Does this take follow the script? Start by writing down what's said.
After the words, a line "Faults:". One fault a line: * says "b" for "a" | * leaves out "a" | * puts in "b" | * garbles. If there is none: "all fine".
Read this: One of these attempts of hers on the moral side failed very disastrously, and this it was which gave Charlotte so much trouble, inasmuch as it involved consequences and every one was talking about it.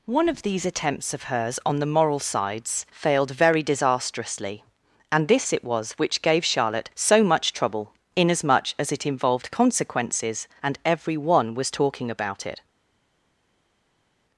One of these attempts of hers on the moral sides failed very disastrously, and this it was which gave Charlotte so much trouble, inasmuch as it involved consequences and every one was talking about it.
Faults:
* says "sides" for "side"